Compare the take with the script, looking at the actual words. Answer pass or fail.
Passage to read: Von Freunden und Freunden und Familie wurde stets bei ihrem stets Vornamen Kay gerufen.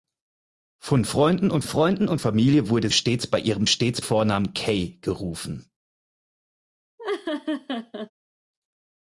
pass